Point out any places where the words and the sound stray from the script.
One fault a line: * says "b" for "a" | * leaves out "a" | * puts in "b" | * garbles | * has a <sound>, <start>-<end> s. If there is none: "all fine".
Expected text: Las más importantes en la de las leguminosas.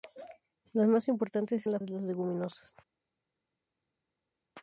all fine